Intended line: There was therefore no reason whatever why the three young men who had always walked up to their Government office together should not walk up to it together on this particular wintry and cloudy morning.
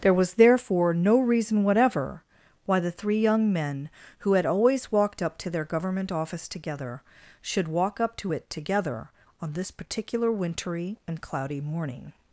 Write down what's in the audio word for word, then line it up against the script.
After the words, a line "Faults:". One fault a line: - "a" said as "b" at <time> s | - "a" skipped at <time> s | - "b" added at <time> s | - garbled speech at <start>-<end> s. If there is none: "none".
There was therefore no reason whatever why the three young men who had always walked up to their Government office together should walk up to it together on this particular wintry and cloudy morning.
Faults:
- "not" skipped at 7.7 s